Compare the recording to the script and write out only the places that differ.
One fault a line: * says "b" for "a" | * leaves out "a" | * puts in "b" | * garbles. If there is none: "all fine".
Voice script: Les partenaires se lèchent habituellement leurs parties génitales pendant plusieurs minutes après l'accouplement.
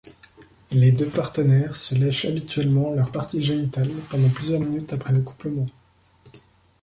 * puts in "deux"